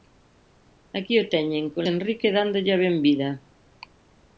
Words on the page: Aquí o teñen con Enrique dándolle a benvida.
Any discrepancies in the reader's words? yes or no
no